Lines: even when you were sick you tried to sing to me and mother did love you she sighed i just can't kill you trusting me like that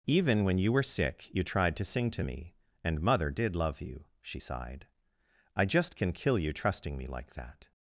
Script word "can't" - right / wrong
wrong